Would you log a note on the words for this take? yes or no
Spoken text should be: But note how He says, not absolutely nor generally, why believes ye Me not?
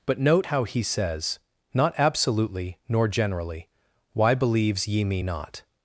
no